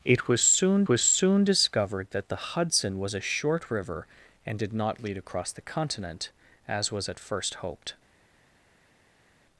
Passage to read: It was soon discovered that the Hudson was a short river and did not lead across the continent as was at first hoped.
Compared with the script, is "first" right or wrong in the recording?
right